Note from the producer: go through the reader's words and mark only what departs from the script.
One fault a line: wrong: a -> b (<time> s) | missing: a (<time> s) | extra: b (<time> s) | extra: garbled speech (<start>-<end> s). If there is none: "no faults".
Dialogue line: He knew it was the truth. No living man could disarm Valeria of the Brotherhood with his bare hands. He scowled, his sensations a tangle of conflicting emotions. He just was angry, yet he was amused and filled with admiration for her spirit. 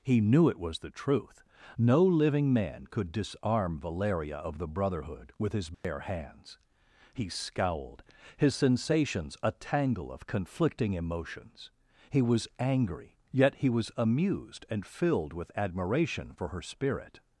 missing: just (12.2 s)